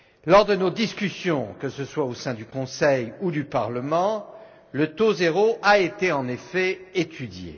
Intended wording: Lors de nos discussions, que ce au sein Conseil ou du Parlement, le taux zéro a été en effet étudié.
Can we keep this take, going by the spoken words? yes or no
no